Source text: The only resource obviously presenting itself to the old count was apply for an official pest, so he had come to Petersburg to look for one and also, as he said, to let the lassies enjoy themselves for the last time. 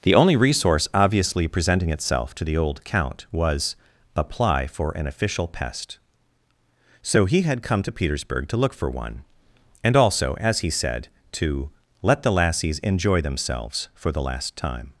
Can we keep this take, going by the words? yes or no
yes